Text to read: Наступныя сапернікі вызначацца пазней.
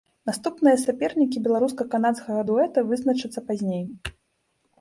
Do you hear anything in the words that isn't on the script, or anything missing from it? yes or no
yes